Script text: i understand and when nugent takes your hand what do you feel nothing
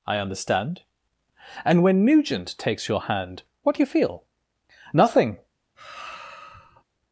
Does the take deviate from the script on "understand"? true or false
false